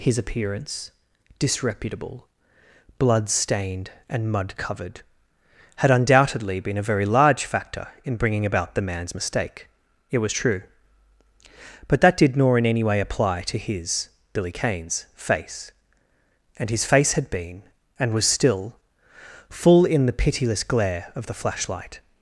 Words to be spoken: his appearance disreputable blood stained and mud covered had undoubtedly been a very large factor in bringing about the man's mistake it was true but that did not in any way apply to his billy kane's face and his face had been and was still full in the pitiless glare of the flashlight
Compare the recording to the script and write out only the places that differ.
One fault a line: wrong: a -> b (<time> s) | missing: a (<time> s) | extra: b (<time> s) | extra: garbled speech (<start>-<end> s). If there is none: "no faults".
wrong: not -> nor (12.4 s)